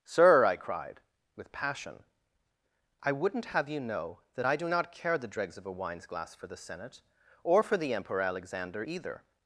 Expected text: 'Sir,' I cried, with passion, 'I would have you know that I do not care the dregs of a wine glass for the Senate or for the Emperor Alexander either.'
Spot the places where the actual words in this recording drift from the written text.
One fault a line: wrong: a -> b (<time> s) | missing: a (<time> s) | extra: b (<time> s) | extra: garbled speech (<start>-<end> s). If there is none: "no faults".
wrong: would -> wouldn't (3.1 s)
wrong: wine -> wines (5.7 s)